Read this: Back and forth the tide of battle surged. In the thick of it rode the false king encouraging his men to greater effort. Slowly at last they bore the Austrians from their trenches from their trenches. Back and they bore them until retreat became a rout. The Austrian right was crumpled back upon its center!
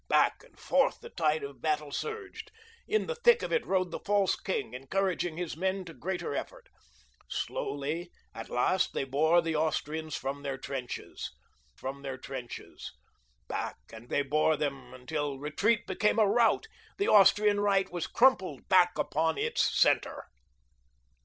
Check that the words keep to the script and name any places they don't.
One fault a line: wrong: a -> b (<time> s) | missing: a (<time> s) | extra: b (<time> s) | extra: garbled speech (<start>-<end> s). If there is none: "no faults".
no faults